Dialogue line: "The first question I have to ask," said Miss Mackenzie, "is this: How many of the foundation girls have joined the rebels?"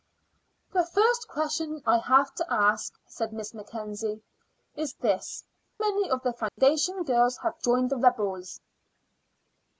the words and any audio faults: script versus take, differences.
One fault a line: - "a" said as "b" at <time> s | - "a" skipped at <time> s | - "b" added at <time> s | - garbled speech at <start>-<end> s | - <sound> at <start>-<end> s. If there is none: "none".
- "How" skipped at 5.4 s
- dropout at 6.5-6.6 s